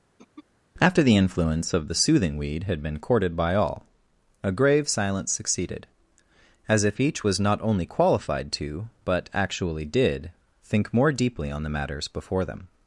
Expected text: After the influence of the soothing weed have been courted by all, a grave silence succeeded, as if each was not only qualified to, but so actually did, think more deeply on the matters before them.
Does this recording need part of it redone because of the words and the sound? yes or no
yes